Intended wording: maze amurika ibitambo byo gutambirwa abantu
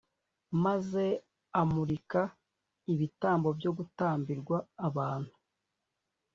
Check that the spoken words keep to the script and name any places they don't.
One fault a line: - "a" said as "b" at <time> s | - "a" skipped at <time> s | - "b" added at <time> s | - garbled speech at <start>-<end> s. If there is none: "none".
none